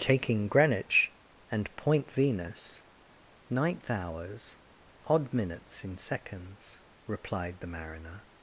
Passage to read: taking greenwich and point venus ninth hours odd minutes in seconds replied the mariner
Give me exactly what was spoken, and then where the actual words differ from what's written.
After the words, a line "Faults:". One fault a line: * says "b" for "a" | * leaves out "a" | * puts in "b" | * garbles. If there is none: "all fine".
taking greenwich and point venus ninth hours odd minutes in seconds replied the mariner
Faults:
all fine